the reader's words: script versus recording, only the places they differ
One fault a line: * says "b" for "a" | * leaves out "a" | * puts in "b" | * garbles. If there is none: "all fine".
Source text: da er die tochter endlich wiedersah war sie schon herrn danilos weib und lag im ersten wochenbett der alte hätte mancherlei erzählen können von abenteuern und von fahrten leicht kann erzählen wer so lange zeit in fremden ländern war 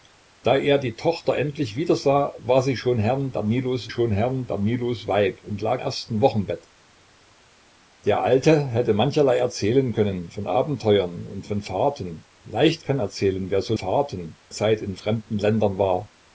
* puts in "schon herrn danilos"
* leaves out "im"
* says "fahrten" for "lange"